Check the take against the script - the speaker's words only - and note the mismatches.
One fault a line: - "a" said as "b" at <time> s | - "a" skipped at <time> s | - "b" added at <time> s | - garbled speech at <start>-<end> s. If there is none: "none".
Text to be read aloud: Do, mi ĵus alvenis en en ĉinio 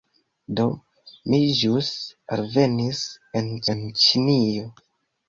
none